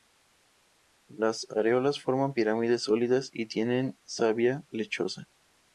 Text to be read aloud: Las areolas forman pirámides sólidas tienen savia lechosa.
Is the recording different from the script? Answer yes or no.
yes